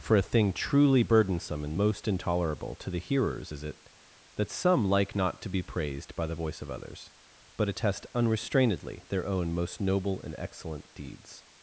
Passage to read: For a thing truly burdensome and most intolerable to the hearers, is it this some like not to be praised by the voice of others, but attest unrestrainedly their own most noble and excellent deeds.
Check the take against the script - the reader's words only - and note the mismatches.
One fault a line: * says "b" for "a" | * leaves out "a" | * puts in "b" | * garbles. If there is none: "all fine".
* says "that" for "this"